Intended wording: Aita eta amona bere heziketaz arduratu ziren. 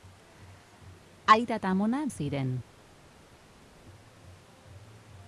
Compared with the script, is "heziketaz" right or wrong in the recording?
wrong